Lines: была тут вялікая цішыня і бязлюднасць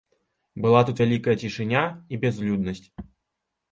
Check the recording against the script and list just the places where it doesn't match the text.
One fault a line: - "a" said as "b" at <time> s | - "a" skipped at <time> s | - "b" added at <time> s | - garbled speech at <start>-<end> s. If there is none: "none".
none